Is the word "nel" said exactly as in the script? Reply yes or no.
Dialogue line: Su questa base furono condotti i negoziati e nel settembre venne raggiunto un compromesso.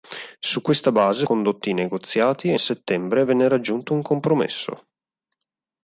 no